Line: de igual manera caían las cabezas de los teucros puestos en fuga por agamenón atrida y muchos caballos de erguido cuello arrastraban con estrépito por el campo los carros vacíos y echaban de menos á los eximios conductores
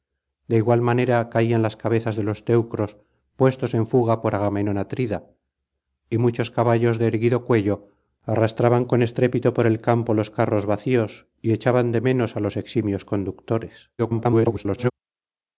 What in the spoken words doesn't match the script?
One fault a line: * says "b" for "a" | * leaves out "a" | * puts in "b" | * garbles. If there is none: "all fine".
* garbles